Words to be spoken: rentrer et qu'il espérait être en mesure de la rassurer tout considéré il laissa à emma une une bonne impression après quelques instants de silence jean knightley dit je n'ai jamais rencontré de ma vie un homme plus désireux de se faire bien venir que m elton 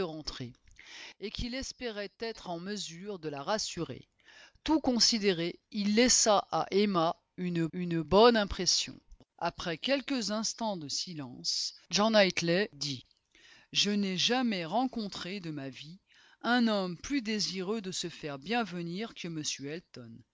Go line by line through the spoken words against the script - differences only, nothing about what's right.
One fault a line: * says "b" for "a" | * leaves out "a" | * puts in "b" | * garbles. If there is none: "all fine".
all fine